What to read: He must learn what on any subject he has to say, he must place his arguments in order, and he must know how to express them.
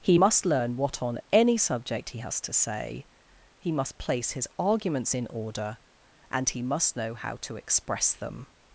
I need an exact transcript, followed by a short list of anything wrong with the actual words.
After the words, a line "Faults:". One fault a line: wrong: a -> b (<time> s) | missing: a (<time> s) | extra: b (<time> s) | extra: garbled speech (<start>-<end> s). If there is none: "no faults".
He must learn what on any subject he has to say, he must place his arguments in order, and he must know how to express them.
Faults:
no faults